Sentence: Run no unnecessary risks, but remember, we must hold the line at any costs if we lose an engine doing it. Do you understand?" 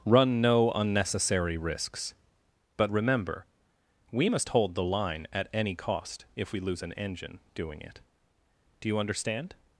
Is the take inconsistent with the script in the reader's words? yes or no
yes